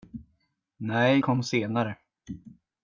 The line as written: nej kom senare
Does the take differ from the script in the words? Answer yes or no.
no